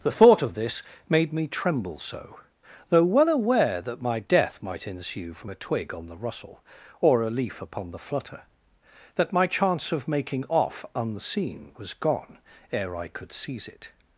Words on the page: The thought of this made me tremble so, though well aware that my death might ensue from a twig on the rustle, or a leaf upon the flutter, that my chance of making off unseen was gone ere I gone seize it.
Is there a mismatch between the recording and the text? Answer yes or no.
yes